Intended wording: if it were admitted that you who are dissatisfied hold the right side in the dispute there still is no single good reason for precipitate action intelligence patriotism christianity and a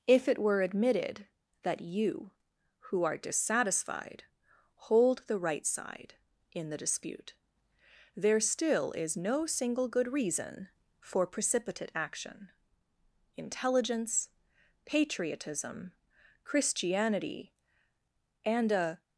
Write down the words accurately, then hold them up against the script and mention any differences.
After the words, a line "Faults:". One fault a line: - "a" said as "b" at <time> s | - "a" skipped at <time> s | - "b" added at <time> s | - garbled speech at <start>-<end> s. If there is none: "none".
if it were admitted that you who are dissatisfied hold the right side in the dispute there still is no single good reason for precipitate action intelligence patriotism christianity and a
Faults:
none